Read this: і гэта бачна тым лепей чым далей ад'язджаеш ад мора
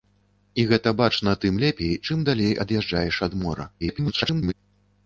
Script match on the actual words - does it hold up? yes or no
no